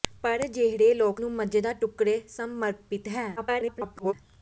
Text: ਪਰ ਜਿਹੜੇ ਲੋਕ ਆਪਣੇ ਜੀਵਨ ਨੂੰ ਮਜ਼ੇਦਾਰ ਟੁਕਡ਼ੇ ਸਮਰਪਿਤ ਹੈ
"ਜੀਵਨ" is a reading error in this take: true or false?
true